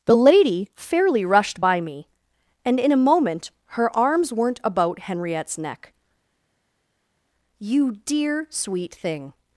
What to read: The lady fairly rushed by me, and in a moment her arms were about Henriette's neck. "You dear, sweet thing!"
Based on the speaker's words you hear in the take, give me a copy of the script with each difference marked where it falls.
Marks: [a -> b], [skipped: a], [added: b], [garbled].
The lady fairly rushed by me, and in a moment her arms [were -> weren't] about Henriette's neck. "You dear, sweet thing!"